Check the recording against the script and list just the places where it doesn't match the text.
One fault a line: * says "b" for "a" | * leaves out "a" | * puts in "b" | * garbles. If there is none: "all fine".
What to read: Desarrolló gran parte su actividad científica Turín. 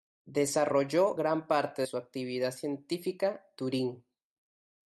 all fine